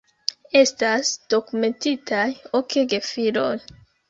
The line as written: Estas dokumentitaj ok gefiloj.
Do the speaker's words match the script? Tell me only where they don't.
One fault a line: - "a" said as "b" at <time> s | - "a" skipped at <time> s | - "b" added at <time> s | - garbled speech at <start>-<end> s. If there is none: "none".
none